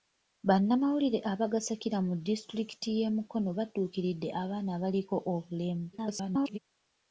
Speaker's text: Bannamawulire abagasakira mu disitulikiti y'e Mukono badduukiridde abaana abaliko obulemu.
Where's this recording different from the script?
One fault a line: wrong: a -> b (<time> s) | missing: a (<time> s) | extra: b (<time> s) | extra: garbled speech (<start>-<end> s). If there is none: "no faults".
extra: garbled speech (5.9-6.6 s)